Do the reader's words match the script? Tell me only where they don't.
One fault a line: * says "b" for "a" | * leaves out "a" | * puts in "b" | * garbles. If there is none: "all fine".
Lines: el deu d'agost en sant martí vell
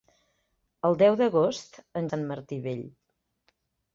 all fine